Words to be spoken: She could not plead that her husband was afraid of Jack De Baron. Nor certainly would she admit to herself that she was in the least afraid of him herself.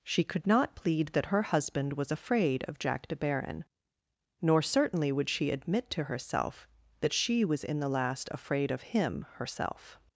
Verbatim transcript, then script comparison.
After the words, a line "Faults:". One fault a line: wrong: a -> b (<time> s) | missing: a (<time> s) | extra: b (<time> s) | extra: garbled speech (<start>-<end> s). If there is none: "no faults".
She could not plead that her husband was afraid of Jack De Baron. Nor certainly would she admit to herself that she was in the last afraid of him herself.
Faults:
wrong: least -> last (7.9 s)